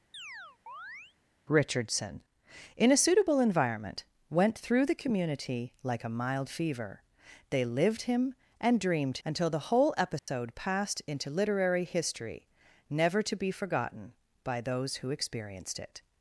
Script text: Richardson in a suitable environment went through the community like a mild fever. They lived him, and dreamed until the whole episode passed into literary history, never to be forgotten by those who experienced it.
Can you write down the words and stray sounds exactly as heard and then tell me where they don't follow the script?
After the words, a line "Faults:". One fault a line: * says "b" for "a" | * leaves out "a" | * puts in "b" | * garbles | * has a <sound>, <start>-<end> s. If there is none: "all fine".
Richardson in a suitable environment went through the community like a mild fever. They lived him, and dreamed until the whole episode passed into literary history, never to be forgotten by those who experienced it.
Faults:
* has a chirp, 0.1-1.2 s
* has a dropout, 10.2-10.3 s